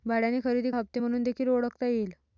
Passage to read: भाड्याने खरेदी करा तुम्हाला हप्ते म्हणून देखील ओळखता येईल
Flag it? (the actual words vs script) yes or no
yes